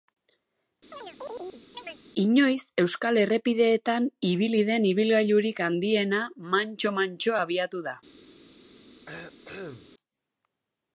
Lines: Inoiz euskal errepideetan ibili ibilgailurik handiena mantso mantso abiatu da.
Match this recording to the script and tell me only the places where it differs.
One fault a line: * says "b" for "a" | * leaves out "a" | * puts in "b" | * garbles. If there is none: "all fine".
* puts in "den"